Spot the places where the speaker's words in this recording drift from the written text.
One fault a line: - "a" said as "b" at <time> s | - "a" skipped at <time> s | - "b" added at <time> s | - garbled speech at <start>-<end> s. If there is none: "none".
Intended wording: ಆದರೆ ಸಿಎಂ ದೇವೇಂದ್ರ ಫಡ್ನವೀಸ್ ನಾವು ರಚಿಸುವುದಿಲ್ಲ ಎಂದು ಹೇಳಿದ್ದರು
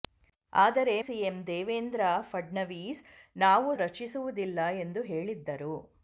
none